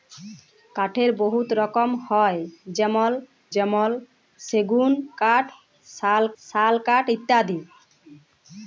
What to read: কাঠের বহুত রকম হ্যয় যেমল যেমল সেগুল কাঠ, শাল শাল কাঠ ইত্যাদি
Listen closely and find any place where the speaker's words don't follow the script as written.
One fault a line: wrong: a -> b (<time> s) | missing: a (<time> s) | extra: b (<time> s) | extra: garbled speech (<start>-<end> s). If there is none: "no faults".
no faults